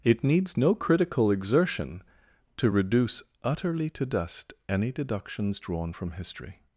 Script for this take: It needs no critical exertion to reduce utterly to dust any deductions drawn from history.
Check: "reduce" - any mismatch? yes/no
no